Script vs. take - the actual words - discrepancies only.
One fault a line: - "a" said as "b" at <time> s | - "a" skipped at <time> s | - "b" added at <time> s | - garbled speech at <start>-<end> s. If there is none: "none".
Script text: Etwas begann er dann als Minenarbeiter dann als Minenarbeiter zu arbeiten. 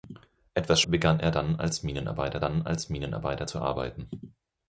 none